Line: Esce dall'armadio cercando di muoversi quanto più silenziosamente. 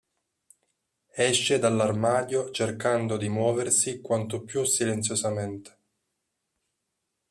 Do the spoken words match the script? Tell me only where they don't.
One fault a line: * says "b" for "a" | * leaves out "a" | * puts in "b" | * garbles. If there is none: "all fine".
all fine